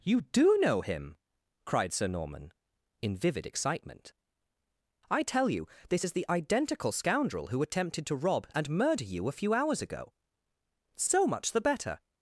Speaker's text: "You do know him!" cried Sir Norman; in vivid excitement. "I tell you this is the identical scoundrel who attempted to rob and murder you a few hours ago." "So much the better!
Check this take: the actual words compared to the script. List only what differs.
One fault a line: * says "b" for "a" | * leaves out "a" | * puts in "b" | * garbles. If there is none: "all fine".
all fine